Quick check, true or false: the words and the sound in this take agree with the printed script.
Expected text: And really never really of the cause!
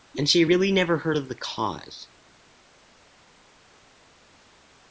false